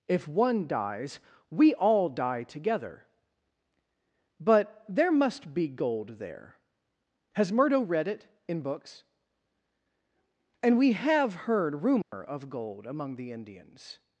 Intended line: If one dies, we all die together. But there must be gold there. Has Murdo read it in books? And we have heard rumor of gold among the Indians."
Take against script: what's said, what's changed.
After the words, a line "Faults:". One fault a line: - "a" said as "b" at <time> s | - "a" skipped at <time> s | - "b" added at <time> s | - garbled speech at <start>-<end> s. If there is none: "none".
If one dies, we all die together. But there must be gold there. Has Murdo read it in books? And we have heard rumor of gold among the Indians."
Faults:
none